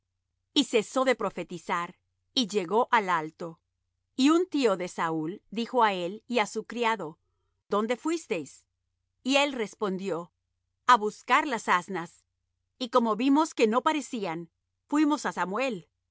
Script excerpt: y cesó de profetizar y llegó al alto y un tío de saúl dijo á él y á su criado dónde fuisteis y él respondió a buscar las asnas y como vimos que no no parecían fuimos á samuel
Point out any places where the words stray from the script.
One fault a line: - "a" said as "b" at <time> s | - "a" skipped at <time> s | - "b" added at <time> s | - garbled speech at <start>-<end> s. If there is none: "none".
- "no" skipped at 13.8 s